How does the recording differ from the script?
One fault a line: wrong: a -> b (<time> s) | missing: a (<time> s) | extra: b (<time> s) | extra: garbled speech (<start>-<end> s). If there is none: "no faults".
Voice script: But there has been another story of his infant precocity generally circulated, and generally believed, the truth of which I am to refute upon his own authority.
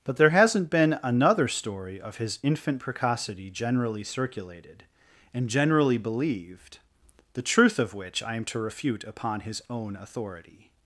wrong: has -> hasn't (0.3 s)